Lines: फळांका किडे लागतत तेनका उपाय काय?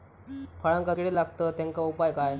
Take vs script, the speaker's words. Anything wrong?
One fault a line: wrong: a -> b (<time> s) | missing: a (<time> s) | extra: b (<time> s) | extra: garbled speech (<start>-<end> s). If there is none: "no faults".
no faults